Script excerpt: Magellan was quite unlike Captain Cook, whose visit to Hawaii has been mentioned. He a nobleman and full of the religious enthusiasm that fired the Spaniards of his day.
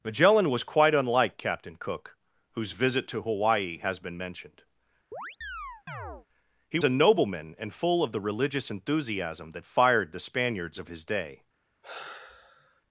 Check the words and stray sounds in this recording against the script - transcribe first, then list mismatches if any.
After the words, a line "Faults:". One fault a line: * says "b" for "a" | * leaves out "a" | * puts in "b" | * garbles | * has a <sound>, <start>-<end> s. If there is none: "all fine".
Magellan was quite unlike Captain Cook, whose visit to Hawaii has been mentioned. He a nobleman and full of the religious enthusiasm that fired the Spaniards of his day.
Faults:
* has a chirp, 5.1-6.3 s
* has a sigh, 11.8-12.8 s